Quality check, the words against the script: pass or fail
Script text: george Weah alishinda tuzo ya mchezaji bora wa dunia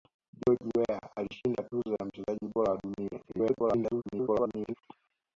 fail